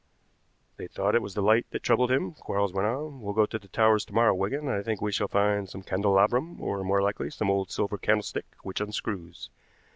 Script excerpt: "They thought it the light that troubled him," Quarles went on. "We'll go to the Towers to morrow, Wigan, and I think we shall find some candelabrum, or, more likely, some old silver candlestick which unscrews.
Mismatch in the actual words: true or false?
true